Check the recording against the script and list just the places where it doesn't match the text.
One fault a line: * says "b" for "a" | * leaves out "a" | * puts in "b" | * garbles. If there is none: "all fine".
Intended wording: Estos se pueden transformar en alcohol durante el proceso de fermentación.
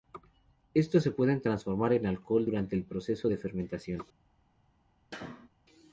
all fine